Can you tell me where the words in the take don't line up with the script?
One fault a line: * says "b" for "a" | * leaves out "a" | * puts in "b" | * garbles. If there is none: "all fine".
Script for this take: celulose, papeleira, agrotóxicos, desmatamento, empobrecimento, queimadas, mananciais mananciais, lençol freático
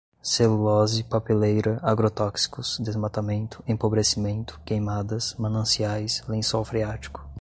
* leaves out "mananciais"